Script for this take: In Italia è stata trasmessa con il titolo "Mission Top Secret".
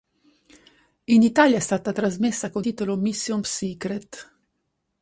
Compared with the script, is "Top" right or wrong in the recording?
wrong